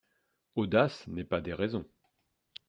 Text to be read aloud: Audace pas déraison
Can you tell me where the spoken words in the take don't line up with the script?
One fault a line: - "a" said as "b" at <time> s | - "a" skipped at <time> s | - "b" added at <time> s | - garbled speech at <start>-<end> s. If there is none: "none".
- "n'est" added at 1.1 s